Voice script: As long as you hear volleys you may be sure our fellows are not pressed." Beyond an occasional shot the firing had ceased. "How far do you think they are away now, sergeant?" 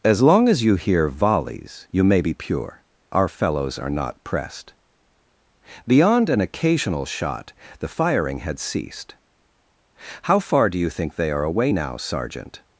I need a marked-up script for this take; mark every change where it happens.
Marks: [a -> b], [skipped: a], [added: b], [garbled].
As long as you hear volleys you may be [sure -> pure] our fellows are not pressed." Beyond an occasional shot the firing had ceased. "How far do you think they are away now, sergeant?"